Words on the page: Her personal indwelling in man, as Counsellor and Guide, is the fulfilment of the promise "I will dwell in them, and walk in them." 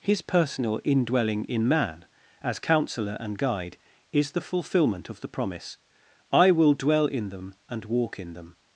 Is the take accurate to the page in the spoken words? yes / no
no